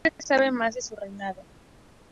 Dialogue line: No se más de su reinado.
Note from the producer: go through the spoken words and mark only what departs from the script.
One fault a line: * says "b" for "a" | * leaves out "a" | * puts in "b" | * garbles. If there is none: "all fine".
* puts in "sabe"